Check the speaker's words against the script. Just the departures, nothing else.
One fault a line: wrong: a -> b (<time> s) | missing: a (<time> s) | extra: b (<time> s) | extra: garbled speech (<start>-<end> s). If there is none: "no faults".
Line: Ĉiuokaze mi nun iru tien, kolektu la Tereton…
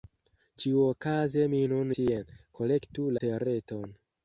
missing: iru (1.9 s)
missing: la (3.1 s)